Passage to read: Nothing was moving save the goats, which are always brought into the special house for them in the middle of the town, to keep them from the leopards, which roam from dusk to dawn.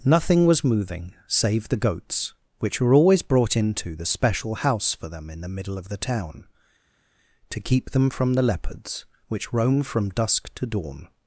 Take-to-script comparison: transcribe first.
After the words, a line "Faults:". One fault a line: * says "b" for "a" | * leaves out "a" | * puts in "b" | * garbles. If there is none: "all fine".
Nothing was moving save the goats, which were always brought into the special house for them in the middle of the town, to keep them from the leopards, which roam from dusk to dawn.
Faults:
* says "were" for "are"